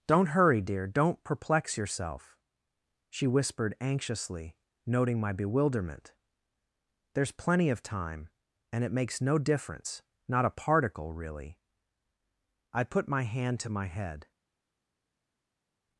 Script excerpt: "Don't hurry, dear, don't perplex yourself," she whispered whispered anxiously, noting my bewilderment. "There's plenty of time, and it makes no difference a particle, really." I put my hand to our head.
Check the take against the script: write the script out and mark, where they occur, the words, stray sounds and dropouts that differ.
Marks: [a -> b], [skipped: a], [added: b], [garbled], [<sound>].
"Don't hurry, dear, don't perplex yourself," she whispered [skipped: whispered] anxiously, noting my bewilderment. "There's plenty of time, and it makes no difference [added: not] a particle, really." I put my hand to [our -> my] head.